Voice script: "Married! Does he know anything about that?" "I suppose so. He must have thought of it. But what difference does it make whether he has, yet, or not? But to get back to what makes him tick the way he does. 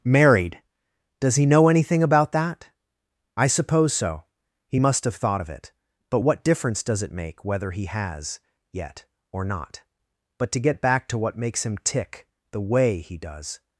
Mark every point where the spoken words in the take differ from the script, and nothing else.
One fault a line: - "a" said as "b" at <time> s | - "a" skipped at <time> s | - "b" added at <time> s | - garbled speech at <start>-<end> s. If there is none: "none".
none